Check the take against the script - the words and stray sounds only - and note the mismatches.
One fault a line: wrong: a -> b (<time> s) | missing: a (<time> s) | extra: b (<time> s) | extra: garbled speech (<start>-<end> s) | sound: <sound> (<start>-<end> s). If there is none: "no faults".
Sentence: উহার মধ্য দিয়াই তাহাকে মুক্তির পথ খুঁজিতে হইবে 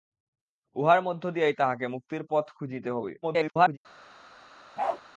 extra: garbled speech (3.2-3.8 s)
sound: bark (4.8-5.0 s)